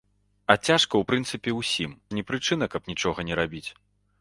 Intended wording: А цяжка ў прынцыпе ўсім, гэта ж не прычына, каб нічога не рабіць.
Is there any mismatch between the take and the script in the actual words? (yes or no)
yes